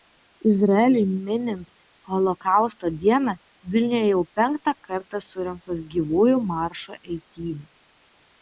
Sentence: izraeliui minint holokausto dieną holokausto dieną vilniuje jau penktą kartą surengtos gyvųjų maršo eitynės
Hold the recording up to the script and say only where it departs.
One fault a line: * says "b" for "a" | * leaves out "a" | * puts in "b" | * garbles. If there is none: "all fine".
* leaves out "holokausto dieną"